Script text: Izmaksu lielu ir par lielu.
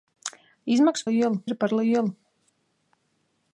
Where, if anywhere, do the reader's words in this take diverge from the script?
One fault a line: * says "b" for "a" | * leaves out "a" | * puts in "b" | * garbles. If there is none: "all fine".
all fine